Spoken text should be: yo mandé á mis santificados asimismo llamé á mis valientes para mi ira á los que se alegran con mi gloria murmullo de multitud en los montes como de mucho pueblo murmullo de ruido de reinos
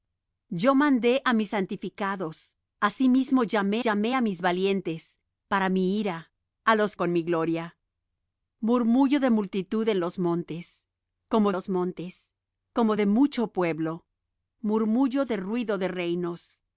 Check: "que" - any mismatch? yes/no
yes